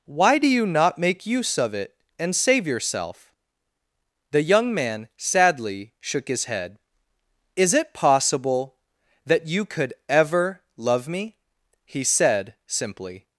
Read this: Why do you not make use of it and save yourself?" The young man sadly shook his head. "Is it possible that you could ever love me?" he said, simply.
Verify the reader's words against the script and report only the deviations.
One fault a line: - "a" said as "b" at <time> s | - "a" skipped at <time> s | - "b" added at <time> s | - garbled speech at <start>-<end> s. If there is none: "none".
none